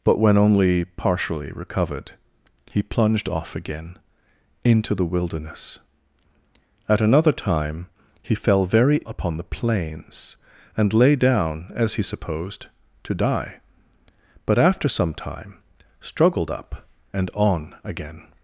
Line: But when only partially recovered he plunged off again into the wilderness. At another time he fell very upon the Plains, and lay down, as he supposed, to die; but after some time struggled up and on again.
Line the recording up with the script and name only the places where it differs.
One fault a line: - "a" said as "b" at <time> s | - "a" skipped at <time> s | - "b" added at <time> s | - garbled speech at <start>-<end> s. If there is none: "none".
none